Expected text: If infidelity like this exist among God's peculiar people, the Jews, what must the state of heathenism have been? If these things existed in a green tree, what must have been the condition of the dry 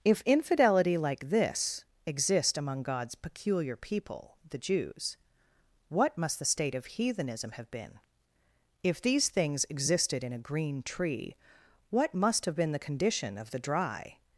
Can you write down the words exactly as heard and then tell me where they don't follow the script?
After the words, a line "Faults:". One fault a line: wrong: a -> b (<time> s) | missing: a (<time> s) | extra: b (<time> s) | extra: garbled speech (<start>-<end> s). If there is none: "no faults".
If infidelity like this exist among God's peculiar people, the Jews, what must the state of heathenism have been? If these things existed in a green tree, what must have been the condition of the dry
Faults:
no faults